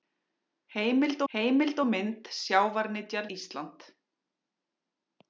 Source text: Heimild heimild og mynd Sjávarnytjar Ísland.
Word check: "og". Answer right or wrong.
right